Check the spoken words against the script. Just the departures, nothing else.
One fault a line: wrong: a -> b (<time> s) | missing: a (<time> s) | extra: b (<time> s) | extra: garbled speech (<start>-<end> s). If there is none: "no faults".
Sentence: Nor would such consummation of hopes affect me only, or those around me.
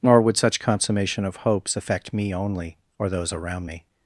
no faults